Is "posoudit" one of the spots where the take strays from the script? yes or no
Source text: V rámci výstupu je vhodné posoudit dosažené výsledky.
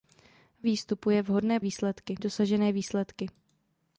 yes